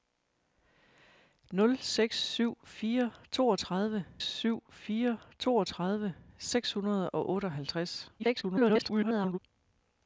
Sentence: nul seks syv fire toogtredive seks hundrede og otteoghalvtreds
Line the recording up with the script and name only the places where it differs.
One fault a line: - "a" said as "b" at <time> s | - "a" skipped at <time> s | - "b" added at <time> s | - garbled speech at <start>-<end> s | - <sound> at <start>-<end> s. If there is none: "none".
- "syv fire toogtredive" added at 4.2 s
- garbled speech at 8.2-9.4 s